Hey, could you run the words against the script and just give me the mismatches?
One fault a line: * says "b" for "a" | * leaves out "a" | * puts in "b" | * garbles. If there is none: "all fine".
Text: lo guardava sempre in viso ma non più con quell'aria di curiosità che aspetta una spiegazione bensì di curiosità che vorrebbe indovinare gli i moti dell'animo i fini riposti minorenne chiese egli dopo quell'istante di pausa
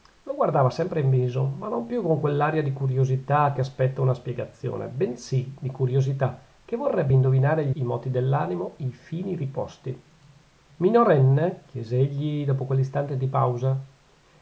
all fine